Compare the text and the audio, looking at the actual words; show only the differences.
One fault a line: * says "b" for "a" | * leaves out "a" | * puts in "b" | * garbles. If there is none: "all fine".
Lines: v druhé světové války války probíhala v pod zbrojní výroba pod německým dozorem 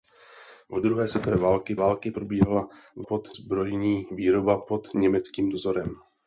all fine